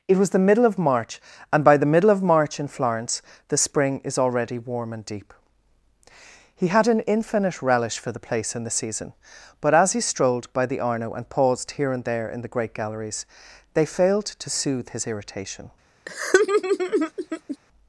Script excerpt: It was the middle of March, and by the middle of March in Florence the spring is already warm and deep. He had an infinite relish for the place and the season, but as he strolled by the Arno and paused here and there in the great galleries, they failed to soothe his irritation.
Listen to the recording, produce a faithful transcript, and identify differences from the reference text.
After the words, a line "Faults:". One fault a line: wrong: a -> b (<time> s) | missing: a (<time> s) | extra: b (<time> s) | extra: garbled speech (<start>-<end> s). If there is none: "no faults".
It was the middle of March, and by the middle of March in Florence the spring is already warm and deep. He had an infinite relish for the place and the season, but as he strolled by the Arno and paused here and there in the great galleries, they failed to soothe his irritation.
Faults:
no faults